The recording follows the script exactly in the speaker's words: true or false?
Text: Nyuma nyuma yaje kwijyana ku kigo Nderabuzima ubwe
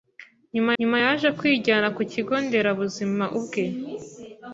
true